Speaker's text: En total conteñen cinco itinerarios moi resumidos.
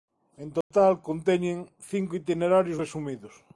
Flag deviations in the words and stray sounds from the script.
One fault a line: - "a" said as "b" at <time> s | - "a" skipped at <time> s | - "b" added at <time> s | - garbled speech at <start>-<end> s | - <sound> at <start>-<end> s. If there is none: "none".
- dropout at 0.6-0.7 s
- "moi" skipped at 2.8 s